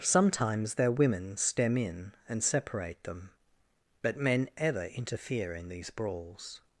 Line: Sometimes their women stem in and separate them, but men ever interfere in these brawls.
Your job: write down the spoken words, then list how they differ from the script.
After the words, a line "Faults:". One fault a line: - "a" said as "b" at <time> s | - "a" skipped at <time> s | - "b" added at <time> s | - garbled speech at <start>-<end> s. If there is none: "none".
Sometimes their women stem in and separate them, but men ever interfere in these brawls.
Faults:
none